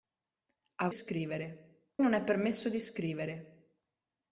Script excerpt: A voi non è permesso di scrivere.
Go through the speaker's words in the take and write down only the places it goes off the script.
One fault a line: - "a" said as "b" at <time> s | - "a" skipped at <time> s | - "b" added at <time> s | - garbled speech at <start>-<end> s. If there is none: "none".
- "voi" said as "scrivere" at 0.9 s